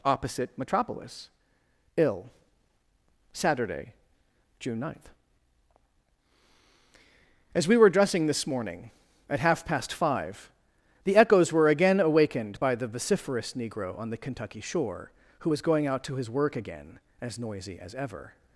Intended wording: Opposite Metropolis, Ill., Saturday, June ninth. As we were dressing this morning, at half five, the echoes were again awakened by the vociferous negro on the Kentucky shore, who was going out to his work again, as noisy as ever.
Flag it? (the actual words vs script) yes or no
yes